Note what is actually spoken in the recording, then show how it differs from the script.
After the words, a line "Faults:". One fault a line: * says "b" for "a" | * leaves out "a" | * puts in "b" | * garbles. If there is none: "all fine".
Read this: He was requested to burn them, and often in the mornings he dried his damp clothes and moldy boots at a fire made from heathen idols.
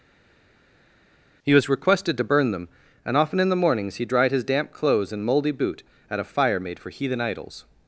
He was requested to burn them, and often in the mornings he dried his damp clothes and moldy boot at a fire made for heathen idols.
Faults:
* says "boot" for "boots"
* says "for" for "from"